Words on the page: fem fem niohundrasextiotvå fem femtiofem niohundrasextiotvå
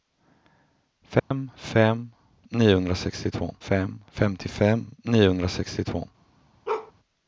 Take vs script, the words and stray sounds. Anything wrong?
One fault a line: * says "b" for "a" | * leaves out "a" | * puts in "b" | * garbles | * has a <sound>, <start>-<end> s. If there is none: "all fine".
* has a dropout, 1.2-1.3 s
* has a bark, 6.7-6.9 s